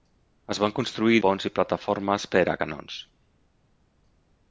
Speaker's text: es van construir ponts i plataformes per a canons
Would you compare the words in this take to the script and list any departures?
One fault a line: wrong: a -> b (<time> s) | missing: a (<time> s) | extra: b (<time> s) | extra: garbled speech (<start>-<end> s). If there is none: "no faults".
no faults